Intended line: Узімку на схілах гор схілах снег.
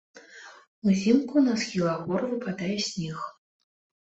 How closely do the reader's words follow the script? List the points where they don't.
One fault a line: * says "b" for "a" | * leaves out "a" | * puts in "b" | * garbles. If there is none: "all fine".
* says "выпадае" for "схілах"